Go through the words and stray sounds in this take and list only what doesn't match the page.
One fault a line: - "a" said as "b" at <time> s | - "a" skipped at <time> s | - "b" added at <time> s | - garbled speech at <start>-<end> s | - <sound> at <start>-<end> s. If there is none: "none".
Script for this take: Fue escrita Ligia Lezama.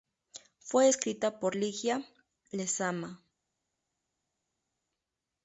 - "por" added at 1.4 s